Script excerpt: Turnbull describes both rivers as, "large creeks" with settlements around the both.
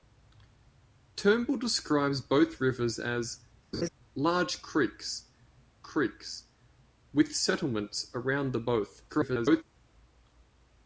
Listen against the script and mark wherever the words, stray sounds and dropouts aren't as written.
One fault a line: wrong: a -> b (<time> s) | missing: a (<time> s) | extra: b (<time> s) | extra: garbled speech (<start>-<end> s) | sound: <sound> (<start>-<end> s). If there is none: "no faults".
sound: laugh (3.7-3.9 s)
extra: creeks (5.8 s)
extra: garbled speech (9.1-9.6 s)